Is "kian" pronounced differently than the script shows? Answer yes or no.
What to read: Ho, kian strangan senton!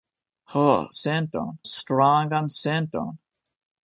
yes